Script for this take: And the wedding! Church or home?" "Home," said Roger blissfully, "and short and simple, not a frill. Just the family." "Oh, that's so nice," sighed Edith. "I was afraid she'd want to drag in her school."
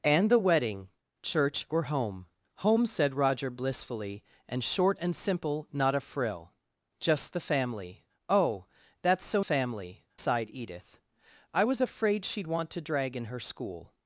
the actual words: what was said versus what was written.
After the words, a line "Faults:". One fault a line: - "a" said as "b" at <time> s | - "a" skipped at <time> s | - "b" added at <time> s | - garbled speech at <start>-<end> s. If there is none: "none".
And the wedding! Church or home?" "Home," said Roger blissfully, "and short and simple, not a frill. Just the family." "Oh, that's so family," sighed Edith. "I was afraid she'd want to drag in her school."
Faults:
- "nice" said as "family" at 9.4 s